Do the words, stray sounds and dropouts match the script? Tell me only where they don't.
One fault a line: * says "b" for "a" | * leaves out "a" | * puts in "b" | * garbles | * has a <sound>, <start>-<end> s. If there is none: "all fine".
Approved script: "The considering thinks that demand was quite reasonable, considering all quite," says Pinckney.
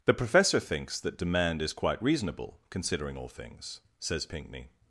* says "professor" for "considering"
* says "is" for "was"
* says "things" for "quite"